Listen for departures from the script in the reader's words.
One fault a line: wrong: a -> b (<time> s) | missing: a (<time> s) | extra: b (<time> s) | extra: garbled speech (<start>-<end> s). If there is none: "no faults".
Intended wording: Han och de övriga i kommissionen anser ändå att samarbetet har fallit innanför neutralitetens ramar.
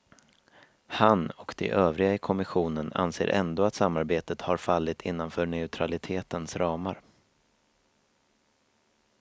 no faults